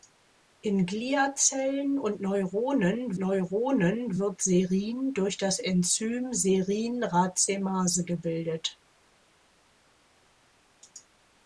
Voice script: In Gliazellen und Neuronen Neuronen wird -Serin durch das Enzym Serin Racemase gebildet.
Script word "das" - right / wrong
right